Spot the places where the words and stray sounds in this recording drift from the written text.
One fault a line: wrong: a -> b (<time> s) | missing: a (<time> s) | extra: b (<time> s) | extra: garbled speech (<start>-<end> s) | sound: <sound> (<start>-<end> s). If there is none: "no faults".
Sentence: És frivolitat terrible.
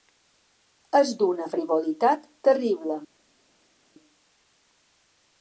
extra: d'una (1.2 s)